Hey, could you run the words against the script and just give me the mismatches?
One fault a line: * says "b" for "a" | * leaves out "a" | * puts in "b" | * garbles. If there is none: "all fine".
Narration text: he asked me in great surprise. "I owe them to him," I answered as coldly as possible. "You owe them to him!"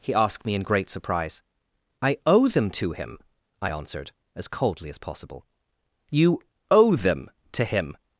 all fine